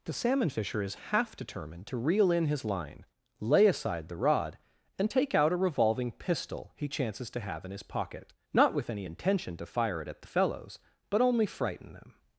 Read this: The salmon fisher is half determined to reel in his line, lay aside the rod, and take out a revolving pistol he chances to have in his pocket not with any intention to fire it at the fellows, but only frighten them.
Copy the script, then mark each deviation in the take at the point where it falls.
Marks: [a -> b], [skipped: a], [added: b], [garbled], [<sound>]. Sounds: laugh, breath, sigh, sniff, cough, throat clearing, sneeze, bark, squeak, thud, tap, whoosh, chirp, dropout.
The salmon fisher is half determined to reel in his line, lay aside the rod, and take out a revolving pistol he chances to have in his pocket not with any intention to fire it at the fellows, but only frighten them.